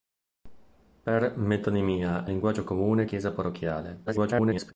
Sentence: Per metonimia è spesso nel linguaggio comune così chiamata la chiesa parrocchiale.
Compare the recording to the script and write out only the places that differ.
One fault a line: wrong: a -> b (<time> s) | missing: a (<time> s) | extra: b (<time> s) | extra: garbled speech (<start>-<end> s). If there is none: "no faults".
missing: è spesso nel (2.2 s)
missing: così chiamata la (3.1 s)
extra: garbled speech (4.1-4.7 s)